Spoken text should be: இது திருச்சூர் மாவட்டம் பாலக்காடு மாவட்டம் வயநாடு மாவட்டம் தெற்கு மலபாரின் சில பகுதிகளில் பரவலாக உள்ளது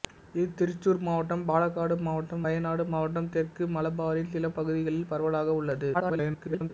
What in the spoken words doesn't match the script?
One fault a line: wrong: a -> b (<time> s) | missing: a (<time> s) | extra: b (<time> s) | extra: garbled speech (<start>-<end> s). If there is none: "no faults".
extra: garbled speech (5.9-6.7 s)